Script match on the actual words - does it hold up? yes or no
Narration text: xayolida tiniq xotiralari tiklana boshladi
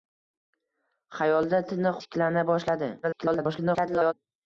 no